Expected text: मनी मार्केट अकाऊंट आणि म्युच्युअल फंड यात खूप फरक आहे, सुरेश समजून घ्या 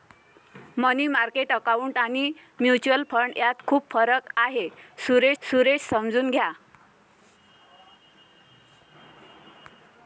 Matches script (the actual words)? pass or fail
fail